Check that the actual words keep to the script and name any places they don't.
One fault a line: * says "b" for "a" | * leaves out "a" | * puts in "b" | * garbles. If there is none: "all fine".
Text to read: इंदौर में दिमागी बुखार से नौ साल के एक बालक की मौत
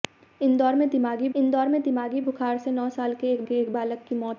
* puts in "इंदौर में दिमागी"
* puts in "के एक"